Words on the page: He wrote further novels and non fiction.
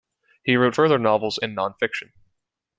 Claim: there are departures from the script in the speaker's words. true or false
false